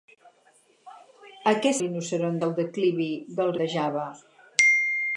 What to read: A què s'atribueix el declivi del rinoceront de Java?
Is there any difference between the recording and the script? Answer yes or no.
yes